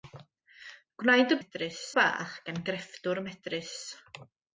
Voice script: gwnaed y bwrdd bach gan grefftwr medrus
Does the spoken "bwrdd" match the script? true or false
false